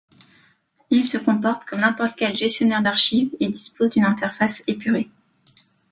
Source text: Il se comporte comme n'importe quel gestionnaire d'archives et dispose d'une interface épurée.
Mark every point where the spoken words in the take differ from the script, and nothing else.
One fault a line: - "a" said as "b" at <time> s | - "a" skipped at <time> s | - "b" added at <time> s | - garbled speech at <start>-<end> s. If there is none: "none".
none